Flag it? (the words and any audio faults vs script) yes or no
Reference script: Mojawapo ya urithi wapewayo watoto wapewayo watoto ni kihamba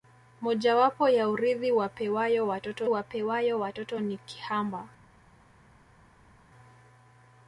no